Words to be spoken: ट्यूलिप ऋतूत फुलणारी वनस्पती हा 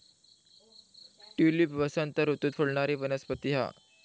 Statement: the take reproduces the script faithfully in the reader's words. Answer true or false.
false